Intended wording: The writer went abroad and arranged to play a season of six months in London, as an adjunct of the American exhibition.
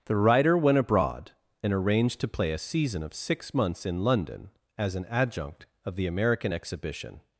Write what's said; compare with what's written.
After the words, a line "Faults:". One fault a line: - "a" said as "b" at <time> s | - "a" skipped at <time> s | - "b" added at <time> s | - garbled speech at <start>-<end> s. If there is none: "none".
The writer went abroad and arranged to play a season of six months in London, as an adjunct of the American exhibition.
Faults:
none